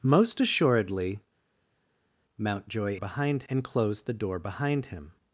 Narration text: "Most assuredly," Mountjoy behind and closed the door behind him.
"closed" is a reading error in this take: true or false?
false